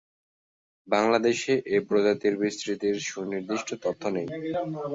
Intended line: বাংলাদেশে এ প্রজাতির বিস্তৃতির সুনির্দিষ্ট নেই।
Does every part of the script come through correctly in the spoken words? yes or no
no